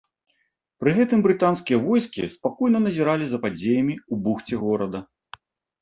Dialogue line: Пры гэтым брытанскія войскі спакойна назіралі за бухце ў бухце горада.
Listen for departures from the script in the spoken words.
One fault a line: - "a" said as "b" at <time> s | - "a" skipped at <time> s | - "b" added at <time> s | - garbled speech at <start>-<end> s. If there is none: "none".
- "бухце" said as "падзеямі" at 3.4 s